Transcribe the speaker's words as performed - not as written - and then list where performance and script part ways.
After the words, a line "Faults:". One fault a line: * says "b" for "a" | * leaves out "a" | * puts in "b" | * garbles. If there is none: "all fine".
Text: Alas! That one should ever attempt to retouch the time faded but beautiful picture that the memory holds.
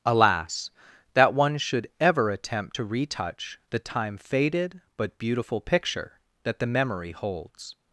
Alas! That one should ever attempt to retouch the time faded but beautiful picture that the memory holds.
Faults:
all fine